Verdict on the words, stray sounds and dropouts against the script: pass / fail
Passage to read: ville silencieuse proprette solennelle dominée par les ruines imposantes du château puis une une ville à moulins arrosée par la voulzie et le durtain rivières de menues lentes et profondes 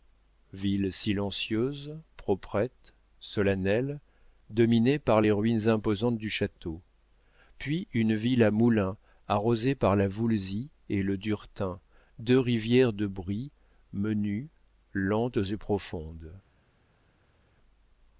fail